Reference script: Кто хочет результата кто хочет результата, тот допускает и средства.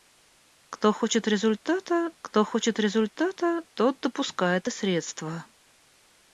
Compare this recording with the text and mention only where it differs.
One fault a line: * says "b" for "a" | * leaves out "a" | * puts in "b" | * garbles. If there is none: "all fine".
all fine